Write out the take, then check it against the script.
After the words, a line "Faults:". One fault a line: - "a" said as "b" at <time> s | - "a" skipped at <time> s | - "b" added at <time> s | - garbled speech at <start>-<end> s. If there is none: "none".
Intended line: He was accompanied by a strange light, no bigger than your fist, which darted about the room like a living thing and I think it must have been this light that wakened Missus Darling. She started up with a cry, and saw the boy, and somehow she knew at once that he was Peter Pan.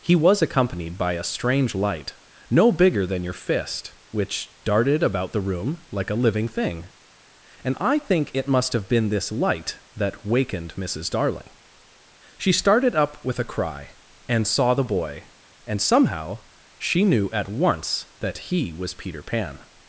He was accompanied by a strange light, no bigger than your fist, which darted about the room like a living thing and I think it must have been this light that wakened Missus Darling. She started up with a cry, and saw the boy, and somehow she knew at once that he was Peter Pan.
Faults:
none